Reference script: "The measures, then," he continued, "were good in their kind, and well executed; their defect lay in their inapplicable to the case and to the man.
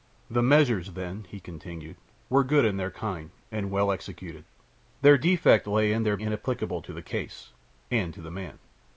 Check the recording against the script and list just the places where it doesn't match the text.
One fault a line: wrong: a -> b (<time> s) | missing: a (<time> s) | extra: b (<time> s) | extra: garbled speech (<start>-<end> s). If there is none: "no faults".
no faults